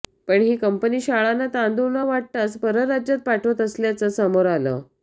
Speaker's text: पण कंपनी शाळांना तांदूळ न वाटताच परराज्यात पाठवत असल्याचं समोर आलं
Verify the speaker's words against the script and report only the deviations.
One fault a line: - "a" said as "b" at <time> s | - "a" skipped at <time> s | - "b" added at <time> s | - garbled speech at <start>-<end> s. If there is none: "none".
- "ही" added at 0.4 s